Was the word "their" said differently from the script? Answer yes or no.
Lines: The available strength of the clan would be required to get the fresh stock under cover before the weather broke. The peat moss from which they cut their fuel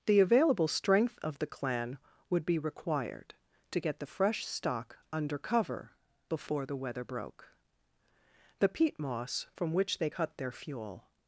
no